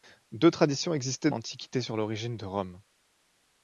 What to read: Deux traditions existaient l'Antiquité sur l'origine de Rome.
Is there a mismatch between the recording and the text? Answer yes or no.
no